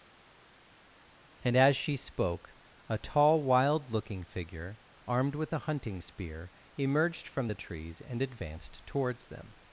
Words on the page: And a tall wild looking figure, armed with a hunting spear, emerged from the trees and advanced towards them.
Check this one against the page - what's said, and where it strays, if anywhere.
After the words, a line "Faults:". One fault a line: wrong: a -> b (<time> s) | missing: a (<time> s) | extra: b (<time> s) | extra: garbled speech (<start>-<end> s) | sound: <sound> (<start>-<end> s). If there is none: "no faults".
And as she spoke, a tall wild looking figure, armed with a hunting spear, emerged from the trees and advanced towards them.
Faults:
extra: as she spoke (1.6 s)